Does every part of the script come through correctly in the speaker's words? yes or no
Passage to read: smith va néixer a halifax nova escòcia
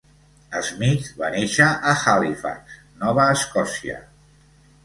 yes